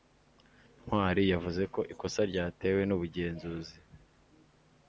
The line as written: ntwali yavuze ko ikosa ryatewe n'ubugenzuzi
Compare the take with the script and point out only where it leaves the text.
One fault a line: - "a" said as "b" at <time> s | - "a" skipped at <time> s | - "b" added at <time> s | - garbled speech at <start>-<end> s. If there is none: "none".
none